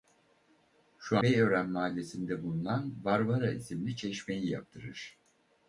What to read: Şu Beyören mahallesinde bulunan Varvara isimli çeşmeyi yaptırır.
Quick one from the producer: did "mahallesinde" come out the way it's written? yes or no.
yes